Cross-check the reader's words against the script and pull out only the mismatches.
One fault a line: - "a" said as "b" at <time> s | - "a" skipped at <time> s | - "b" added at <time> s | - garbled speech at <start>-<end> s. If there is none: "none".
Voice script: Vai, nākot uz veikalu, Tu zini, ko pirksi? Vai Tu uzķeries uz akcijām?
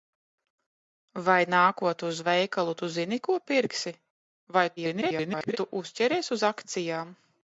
- garbled speech at 4.8-5.6 s